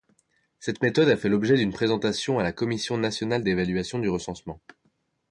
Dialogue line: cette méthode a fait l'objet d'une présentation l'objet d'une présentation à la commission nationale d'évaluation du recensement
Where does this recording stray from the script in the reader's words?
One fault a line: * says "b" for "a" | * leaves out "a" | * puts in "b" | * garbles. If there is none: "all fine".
* leaves out "l'objet d'une présentation"